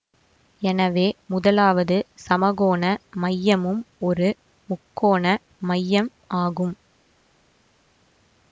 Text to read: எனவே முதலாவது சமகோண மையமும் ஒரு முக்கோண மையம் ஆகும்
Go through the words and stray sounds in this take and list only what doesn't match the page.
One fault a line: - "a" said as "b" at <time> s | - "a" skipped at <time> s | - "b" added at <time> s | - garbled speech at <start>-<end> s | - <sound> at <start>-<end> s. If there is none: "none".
none